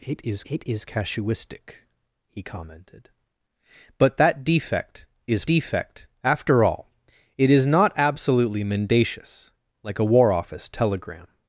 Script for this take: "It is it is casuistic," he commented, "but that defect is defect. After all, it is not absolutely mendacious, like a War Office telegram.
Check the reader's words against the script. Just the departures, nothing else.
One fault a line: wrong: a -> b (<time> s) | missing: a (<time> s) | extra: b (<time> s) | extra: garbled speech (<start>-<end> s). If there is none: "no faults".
no faults